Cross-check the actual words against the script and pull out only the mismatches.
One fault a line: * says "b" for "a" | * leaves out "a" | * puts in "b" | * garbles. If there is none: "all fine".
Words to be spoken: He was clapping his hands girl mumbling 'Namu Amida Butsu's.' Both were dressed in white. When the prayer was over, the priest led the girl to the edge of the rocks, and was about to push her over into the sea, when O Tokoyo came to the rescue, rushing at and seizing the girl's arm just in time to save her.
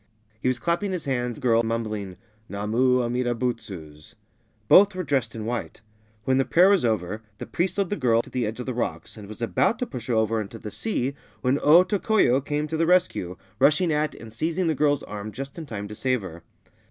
all fine